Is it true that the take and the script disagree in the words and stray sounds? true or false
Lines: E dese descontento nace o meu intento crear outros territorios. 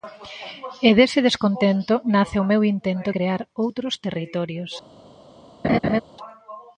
true